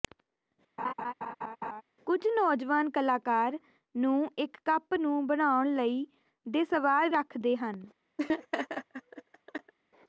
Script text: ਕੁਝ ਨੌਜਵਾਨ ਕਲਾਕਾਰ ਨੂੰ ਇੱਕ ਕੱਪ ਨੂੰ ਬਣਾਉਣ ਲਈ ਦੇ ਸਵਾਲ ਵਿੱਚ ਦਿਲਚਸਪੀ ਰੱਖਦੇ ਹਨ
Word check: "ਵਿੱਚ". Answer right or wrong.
wrong